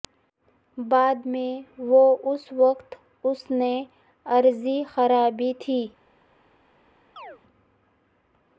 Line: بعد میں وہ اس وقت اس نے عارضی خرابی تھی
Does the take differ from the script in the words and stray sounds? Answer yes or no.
yes